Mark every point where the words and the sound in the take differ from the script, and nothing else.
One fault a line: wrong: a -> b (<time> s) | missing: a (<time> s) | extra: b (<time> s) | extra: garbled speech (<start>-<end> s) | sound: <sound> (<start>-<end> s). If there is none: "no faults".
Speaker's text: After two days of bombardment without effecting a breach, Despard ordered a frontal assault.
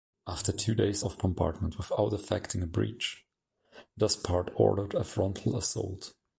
no faults